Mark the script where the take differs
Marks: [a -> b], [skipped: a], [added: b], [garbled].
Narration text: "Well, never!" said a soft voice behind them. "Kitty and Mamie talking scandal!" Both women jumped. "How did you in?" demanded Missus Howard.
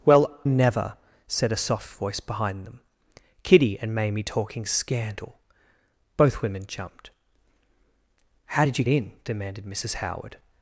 "Well, never!" said a soft voice behind them. "Kitty and Mamie talking scandal!" Both women jumped. "How did you in?" demanded Missus Howard.